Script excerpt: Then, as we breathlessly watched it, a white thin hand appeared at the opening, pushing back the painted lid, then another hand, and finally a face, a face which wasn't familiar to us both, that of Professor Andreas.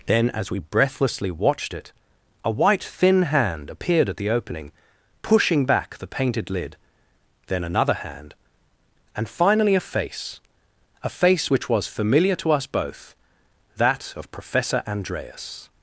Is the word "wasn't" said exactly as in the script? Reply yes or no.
no